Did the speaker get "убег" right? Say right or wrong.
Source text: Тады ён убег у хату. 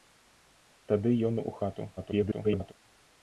wrong